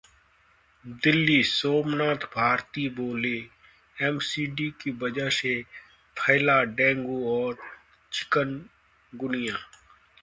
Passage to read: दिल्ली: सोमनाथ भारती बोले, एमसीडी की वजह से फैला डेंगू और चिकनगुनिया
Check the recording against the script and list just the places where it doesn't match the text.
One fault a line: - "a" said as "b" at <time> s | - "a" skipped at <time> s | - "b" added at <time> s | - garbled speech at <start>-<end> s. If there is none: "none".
none